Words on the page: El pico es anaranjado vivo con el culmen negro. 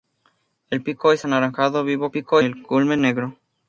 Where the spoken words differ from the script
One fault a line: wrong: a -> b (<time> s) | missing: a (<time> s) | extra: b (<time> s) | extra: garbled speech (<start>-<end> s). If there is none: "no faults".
wrong: con -> pico (2.1 s)